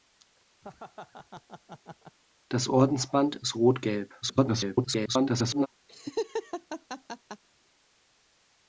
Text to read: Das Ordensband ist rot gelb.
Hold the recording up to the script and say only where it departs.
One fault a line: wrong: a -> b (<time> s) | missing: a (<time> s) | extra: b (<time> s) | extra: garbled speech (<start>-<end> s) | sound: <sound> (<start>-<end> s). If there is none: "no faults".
sound: laugh (0.6-2.2 s)
extra: garbled speech (4.2-5.7 s)
sound: laugh (5.9-7.4 s)